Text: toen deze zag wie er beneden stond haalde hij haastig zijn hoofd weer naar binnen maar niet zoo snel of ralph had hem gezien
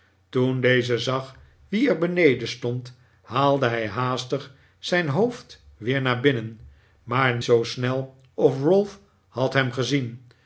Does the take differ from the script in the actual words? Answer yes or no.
yes